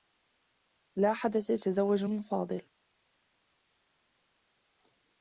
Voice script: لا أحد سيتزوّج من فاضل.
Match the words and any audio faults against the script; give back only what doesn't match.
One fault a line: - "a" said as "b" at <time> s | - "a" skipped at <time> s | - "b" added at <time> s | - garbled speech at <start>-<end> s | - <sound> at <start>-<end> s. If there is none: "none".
none